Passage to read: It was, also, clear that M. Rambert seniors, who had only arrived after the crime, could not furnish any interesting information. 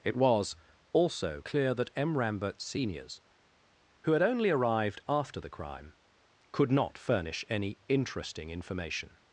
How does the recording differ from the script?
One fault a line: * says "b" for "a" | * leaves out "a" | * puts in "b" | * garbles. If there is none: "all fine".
all fine